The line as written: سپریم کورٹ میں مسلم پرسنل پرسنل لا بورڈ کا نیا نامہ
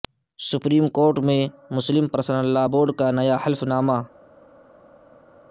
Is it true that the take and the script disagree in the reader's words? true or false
true